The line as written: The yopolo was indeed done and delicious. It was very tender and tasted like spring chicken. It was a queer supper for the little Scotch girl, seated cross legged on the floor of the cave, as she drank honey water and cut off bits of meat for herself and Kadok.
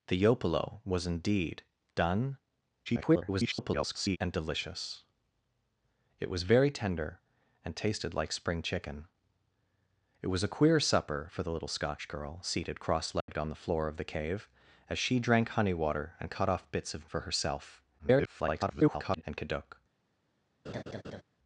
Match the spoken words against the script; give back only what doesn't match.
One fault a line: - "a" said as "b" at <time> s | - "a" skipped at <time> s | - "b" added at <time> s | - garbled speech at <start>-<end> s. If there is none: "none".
- garbled speech at 2.9-4.2 s
- "meat" skipped at 17.1 s
- garbled speech at 18.0-19.2 s